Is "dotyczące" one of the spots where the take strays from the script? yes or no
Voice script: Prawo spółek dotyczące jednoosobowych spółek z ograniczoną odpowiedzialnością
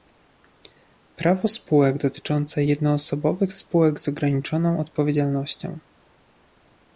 no